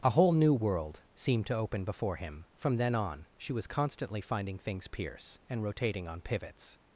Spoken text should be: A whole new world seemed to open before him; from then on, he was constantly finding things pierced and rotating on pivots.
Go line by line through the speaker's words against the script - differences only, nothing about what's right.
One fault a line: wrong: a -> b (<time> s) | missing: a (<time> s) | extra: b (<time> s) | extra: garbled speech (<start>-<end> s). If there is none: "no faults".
wrong: he -> she (3.4 s)
wrong: pierced -> pierce (4.9 s)